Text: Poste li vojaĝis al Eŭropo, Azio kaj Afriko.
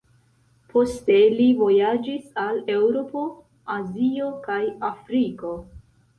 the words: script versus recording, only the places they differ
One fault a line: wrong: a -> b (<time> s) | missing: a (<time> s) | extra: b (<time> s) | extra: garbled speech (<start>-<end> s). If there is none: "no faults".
no faults